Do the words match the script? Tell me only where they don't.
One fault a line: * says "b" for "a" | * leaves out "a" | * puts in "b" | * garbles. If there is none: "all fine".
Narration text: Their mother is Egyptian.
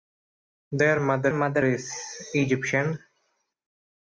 * puts in "mother"